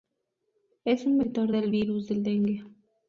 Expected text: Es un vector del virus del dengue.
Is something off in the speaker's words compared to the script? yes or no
no